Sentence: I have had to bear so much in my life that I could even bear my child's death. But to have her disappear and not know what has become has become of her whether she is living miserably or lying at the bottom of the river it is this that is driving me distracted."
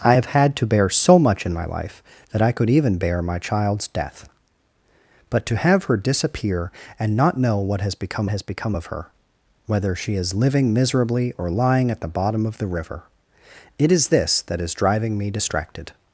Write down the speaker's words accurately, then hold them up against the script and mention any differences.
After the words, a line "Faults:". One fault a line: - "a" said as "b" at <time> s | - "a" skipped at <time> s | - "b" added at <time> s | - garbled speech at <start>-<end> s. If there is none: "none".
I have had to bear so much in my life that I could even bear my child's death. But to have her disappear and not know what has become has become of her whether she is living miserably or lying at the bottom of the river it is this that is driving me distracted."
Faults:
none